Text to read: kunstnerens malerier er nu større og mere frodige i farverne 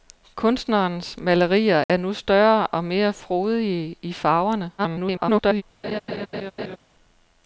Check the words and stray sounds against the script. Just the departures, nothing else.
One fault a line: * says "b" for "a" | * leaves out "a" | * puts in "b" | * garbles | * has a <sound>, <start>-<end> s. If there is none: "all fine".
* has a dropout, 1.8-1.9 s
* garbles
* has a laugh, 5.8-6.8 s